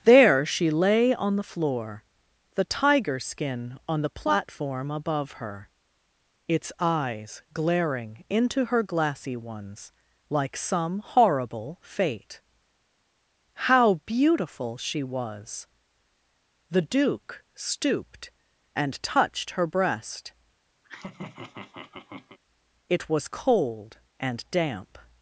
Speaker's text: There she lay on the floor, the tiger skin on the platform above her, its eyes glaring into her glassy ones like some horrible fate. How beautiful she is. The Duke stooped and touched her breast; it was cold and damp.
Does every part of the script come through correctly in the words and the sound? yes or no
no